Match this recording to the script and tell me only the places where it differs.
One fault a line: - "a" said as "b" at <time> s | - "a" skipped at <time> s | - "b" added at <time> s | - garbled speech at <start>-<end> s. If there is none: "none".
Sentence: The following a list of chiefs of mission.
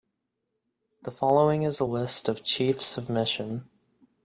- "is" added at 1.6 s